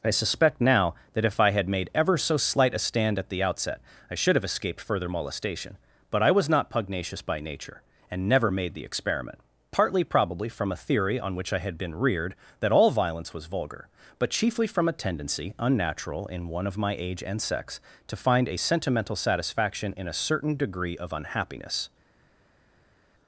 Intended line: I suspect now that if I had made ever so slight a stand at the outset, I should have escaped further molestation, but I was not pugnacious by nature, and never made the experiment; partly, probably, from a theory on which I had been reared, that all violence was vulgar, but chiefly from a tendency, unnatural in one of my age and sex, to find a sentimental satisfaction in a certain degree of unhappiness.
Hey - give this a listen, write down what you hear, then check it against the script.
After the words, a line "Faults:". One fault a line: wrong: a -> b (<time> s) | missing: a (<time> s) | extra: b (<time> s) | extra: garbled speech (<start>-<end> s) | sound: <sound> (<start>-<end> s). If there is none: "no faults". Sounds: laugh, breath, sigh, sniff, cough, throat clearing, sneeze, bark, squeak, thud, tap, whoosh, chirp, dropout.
I suspect now that if I had made ever so slight a stand at the outset, I should have escaped further molestation, but I was not pugnacious by nature, and never made the experiment; partly, probably, from a theory on which I had been reared, that all violence was vulgar, but chiefly from a tendency, unnatural in one of my age and sex, to find a sentimental satisfaction in a certain degree of unhappiness.
Faults:
no faults